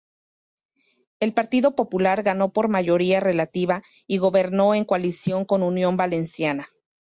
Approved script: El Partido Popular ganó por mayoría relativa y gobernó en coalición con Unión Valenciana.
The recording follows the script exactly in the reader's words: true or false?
true